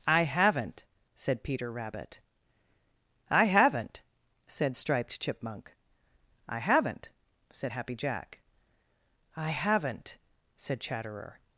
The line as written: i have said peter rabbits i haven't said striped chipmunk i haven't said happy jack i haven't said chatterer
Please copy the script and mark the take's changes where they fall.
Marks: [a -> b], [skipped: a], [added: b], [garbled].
i [have -> haven't] said peter [rabbits -> rabbit] i haven't said striped chipmunk i haven't said happy jack i haven't said chatterer